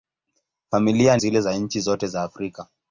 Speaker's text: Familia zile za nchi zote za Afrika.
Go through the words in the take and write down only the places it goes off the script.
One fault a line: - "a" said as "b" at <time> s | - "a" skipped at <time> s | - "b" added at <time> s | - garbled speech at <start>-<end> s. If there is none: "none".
none